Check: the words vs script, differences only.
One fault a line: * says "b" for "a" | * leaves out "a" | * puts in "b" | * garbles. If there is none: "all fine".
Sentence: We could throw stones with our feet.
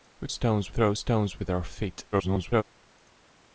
* says "stones" for "could"
* garbles